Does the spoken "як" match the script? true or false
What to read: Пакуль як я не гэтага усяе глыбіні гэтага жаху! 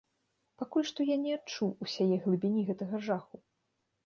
false